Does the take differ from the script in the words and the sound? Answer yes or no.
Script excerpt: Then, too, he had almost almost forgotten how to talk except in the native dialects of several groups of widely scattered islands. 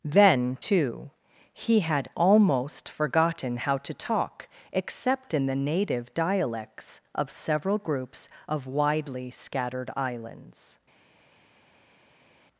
yes